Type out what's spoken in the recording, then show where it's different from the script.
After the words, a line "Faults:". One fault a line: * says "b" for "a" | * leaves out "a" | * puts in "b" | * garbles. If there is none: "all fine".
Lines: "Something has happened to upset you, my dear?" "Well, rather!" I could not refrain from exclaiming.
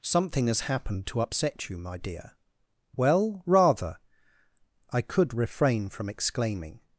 "Something has happened to upset you, my dear?" "Well, rather!" I could refrain from exclaiming.
Faults:
* leaves out "not"